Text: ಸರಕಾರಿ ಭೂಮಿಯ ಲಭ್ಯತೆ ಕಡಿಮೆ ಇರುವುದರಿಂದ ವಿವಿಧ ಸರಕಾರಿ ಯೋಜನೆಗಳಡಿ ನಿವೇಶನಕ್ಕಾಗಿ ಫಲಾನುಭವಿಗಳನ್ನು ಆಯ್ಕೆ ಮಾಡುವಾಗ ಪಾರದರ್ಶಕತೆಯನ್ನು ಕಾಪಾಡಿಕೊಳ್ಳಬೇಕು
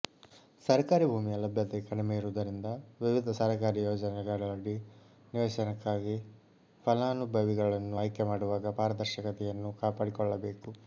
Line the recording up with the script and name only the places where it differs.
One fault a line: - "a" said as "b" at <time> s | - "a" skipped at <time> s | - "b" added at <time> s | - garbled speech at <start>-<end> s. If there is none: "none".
none